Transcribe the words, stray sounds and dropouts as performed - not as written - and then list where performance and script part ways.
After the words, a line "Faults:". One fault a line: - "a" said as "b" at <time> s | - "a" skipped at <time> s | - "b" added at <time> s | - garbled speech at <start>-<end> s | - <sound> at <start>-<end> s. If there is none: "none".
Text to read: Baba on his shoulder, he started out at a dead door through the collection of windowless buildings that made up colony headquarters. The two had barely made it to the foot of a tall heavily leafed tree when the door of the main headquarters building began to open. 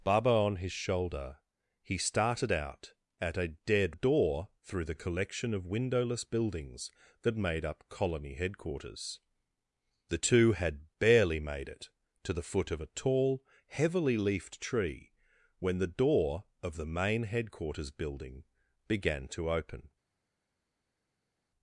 Baba on his shoulder, he started out at a dead door through the collection of windowless buildings that made up colony headquarters. The two had barely made it to the foot of a tall heavily leafed tree when the door of the main headquarters building began to open.
Faults:
none